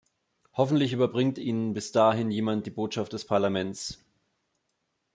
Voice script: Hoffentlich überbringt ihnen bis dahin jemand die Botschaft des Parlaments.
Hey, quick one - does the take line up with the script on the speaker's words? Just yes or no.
yes